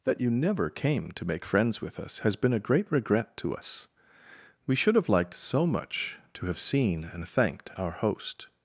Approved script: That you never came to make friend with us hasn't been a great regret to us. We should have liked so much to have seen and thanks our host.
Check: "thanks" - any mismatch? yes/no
yes